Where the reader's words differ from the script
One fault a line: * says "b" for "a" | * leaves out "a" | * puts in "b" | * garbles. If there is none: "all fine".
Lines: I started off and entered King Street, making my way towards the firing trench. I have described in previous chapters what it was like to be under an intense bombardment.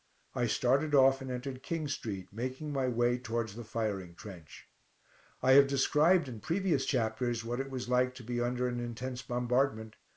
all fine